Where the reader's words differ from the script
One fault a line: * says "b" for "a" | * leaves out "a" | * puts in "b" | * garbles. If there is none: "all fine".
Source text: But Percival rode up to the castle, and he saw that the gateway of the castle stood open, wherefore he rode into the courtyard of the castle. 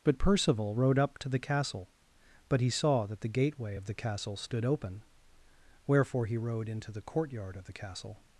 * says "but" for "and"